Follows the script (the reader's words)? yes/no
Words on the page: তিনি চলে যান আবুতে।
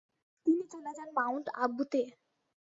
no